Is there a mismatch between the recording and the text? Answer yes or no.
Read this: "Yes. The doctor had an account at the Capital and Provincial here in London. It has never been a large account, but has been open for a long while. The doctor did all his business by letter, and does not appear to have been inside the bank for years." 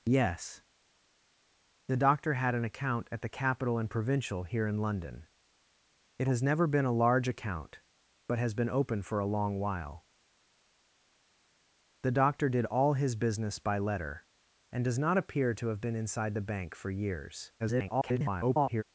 yes